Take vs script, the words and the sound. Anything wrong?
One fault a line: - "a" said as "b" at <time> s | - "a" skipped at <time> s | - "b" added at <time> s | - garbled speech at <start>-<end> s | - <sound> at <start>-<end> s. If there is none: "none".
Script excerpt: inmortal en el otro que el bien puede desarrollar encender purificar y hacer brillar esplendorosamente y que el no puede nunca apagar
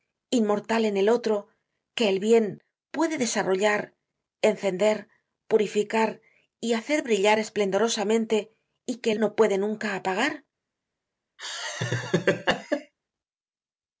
- laugh at 11.4-12.9 s